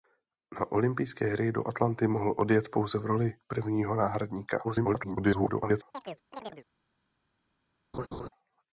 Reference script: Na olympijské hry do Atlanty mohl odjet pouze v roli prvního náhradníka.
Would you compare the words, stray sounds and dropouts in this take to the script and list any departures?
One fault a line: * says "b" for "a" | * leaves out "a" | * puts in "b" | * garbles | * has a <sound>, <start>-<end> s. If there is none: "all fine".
* garbles
* has a chirp, 5.9-6.7 s
* has a laugh, 7.9-8.3 s